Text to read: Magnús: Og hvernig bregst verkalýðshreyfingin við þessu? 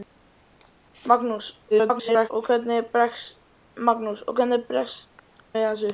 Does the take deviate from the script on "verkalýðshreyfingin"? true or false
true